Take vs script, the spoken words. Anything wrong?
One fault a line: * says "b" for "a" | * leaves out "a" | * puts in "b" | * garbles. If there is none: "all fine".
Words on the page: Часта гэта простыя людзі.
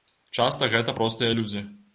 all fine